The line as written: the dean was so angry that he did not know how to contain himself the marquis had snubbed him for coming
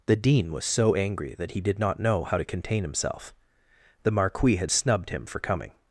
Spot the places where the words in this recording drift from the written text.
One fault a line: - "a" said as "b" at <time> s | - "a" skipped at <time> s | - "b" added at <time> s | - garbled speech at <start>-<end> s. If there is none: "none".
none